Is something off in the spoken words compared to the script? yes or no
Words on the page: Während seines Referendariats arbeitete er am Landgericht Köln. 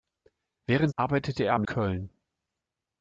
yes